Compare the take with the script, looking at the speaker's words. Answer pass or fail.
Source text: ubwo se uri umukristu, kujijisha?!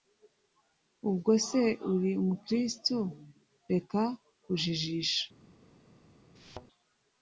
fail